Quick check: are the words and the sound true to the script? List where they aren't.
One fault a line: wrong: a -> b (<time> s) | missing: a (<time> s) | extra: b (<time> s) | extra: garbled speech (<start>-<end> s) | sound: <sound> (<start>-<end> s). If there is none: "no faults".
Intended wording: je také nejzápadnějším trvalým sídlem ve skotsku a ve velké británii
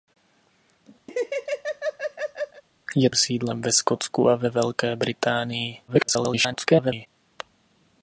sound: laugh (1.1-2.6 s)
missing: také nejzápadnějším trvalým (3.1 s)
extra: garbled speech (5.9-7.1 s)